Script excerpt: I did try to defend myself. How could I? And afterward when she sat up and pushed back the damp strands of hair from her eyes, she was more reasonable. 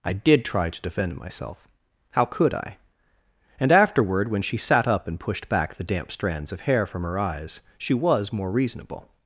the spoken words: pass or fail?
pass